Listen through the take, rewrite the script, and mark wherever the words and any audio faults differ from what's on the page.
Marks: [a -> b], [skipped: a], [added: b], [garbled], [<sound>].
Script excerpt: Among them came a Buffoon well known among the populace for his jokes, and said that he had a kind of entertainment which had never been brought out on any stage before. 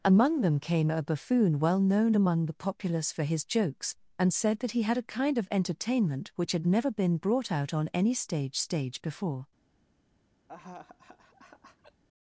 Among them came a Buffoon well known among the populace for his jokes, and said that he had a kind of entertainment which had never been brought out on any stage [added: stage] before. [laugh]